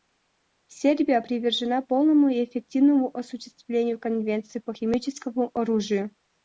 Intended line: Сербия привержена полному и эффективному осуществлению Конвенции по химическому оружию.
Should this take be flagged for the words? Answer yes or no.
no